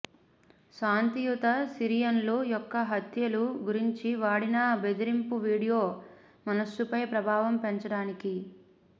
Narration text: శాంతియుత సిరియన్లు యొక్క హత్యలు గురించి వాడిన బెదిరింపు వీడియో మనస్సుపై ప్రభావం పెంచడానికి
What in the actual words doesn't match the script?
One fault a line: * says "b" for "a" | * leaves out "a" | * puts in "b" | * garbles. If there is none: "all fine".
all fine